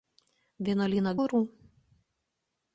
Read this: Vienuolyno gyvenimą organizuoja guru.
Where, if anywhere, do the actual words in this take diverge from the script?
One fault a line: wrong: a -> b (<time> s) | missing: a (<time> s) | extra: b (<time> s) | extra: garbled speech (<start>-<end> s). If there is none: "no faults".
missing: gyvenimą organizuoja (1.1 s)